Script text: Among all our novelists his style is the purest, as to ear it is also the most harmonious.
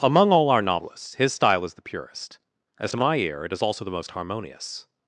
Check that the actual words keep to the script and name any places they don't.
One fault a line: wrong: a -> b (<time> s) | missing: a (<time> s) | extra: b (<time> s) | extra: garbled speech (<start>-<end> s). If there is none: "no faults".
extra: my (3.0 s)